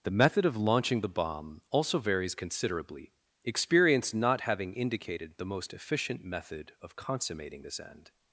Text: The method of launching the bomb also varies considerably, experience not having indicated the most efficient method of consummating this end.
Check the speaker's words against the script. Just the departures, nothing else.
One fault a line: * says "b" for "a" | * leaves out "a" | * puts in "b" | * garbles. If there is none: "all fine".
all fine